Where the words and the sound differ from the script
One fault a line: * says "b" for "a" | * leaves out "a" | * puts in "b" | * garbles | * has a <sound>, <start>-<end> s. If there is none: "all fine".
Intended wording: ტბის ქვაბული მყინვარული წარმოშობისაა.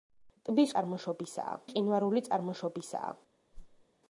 * says "წარმოშობისაა" for "ქვაბული"
* has a whoosh, 3.5-3.9 s